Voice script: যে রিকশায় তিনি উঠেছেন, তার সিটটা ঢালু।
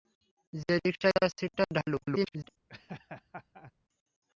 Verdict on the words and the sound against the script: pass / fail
fail